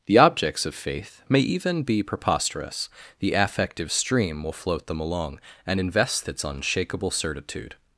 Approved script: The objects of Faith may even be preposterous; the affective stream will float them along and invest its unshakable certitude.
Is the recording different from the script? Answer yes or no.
no